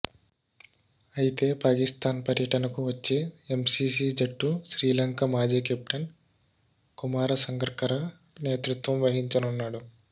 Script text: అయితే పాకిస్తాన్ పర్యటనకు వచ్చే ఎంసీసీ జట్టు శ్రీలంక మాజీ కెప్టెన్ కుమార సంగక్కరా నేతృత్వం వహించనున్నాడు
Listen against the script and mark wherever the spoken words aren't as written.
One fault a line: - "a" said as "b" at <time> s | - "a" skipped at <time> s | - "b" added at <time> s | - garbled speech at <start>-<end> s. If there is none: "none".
none